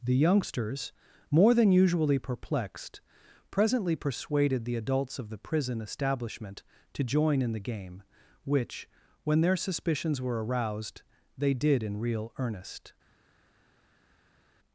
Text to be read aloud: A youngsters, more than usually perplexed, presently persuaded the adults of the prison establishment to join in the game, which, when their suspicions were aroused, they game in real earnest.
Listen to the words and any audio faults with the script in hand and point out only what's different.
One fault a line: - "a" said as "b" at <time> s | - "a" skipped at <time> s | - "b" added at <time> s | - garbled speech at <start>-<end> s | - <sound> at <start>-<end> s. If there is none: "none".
- "A" said as "The" at 0.0 s
- "game" said as "did" at 11.5 s